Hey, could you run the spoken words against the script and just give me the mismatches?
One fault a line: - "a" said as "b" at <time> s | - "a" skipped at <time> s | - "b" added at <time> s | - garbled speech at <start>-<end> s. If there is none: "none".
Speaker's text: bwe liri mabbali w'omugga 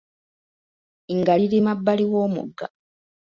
- "bwe" said as "nga" at 1.2 s